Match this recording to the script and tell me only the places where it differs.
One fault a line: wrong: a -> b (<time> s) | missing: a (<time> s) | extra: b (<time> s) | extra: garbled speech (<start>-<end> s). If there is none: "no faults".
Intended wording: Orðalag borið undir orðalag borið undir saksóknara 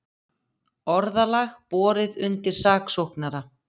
missing: orðalag borið undir (2.6 s)